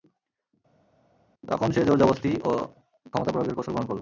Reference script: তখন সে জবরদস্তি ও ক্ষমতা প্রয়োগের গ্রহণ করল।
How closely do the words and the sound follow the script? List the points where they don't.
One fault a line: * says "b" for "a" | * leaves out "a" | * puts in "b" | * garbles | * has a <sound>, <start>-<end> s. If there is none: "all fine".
* puts in "জোর"
* puts in "কৌশল"